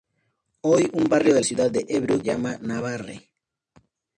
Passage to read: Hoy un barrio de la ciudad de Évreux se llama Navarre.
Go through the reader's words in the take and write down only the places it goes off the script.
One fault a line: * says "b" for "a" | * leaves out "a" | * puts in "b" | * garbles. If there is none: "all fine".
* leaves out "la"
* leaves out "se"